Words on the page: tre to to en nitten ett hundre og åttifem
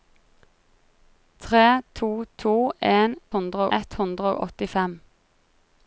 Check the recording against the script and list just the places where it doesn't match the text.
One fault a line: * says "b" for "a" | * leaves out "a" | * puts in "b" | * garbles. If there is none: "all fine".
* says "hundre" for "nitten"